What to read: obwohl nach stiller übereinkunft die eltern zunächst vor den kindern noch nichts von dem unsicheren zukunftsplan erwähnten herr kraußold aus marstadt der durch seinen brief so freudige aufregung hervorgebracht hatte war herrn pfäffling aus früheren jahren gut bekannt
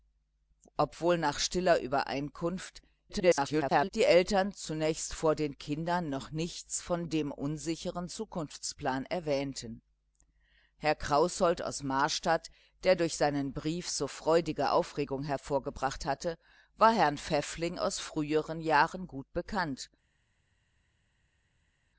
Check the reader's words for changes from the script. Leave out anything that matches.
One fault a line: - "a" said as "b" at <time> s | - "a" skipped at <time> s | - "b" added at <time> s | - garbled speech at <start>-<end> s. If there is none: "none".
- garbled speech at 3.1-3.9 s